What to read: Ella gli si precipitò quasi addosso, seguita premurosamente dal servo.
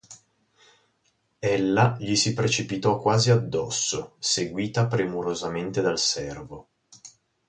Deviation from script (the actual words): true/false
false